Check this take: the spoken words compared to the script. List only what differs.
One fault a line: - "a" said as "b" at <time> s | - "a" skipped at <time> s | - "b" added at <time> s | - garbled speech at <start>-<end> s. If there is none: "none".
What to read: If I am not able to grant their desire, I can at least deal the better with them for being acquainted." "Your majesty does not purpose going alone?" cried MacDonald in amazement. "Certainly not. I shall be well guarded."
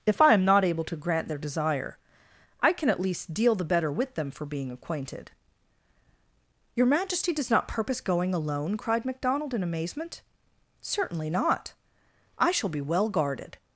none